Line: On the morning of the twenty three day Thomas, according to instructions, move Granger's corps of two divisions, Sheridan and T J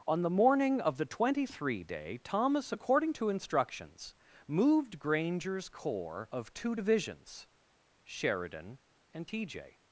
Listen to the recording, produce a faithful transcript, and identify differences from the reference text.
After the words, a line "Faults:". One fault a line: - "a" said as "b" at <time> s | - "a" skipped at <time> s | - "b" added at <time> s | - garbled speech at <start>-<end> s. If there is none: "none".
On the morning of the twenty three day Thomas, according to instructions, moved Granger's corps of two divisions, Sheridan and T J
Faults:
- "move" said as "moved" at 4.5 s